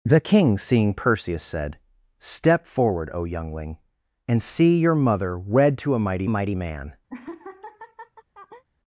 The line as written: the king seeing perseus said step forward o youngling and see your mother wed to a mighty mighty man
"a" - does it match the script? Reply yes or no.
yes